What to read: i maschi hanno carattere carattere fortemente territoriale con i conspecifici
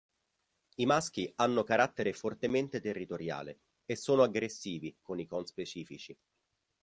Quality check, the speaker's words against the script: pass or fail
fail